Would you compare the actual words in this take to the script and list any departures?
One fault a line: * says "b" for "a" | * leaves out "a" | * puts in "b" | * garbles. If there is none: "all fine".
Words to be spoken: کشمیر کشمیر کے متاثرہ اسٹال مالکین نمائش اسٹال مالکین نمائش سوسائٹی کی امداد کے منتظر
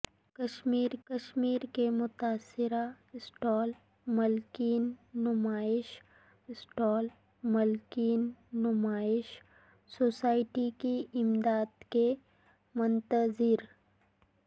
all fine